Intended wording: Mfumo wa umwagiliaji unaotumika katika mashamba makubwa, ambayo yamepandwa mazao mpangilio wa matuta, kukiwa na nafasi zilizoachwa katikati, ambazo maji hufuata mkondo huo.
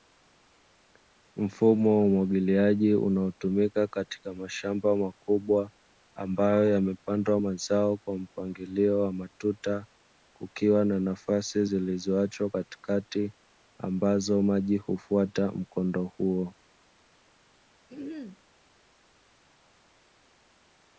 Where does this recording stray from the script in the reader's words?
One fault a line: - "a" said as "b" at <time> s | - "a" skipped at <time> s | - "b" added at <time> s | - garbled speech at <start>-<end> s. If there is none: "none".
- "kwa" added at 8.0 s